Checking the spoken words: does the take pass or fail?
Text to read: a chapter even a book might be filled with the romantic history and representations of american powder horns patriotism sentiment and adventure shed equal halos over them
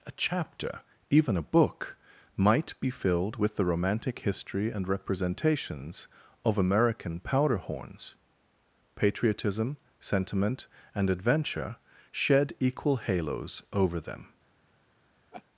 pass